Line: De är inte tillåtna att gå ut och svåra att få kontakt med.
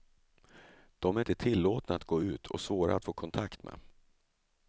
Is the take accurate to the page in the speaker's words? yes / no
yes